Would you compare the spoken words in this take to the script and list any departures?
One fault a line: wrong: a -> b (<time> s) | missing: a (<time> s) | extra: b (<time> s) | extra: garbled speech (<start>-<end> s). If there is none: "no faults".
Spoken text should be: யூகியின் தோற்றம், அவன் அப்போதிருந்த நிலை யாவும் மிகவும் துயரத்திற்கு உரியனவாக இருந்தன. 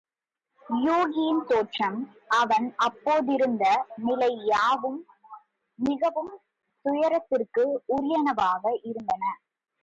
no faults